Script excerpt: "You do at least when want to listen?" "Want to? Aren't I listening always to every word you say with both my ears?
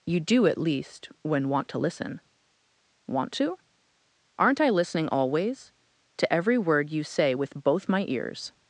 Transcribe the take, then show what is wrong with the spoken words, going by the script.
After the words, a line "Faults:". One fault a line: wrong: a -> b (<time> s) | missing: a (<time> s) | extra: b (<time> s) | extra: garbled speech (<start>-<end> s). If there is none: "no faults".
"You do at least when want to listen?" "Want to? Aren't I listening always to every word you say with both my ears?
Faults:
no faults